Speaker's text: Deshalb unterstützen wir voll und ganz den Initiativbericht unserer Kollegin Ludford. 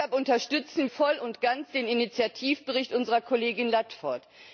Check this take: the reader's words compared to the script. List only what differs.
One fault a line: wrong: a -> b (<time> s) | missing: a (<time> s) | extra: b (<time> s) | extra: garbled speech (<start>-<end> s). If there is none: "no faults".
missing: wir (0.9 s)